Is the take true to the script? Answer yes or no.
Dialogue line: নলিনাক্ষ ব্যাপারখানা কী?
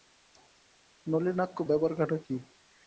yes